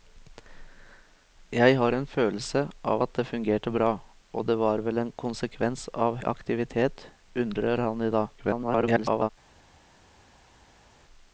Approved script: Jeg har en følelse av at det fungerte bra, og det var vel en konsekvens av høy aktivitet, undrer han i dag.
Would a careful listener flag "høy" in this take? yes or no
yes